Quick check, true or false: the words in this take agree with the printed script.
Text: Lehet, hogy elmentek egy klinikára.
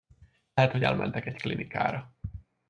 true